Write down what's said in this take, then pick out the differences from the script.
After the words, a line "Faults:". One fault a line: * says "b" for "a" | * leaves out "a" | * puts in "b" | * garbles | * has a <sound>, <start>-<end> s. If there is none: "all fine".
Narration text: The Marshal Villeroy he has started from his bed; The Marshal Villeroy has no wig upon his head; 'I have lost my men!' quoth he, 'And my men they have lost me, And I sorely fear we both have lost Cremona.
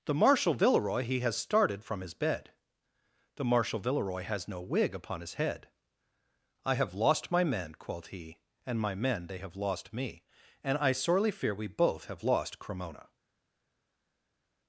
The Marshal Villeroy he has started from his bed; The Marshal Villeroy has no wig upon his head; 'I have lost my men!' quoth he, 'And my men they have lost me, And I sorely fear we both have lost Cremona.
Faults:
all fine